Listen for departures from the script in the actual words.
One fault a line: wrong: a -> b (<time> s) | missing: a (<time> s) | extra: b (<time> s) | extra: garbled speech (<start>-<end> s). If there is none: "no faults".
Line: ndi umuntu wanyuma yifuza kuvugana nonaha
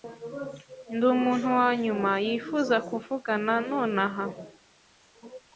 no faults